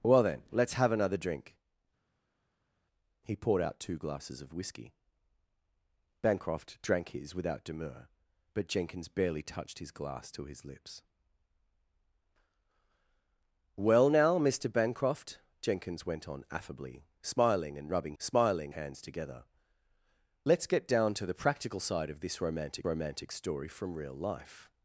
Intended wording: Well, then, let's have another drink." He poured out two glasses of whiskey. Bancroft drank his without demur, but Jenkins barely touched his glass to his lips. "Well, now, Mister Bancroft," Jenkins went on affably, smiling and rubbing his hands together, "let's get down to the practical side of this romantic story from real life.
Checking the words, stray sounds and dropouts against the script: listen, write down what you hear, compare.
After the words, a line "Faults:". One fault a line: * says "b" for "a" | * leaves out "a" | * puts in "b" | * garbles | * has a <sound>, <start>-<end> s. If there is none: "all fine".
Well, then, let's have another drink." He poured out two glasses of whiskey. Bancroft drank his without demur, but Jenkins barely touched his glass to his lips. "Well, now, Mister Bancroft," Jenkins went on affably, smiling and rubbing smiling hands together, "let's get down to the practical side of this romantic romantic story from real life.
Faults:
* says "smiling" for "his"
* puts in "romantic"